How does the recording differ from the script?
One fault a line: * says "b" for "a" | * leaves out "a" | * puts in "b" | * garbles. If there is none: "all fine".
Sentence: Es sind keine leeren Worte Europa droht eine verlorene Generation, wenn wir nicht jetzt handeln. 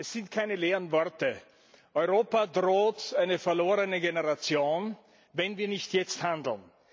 all fine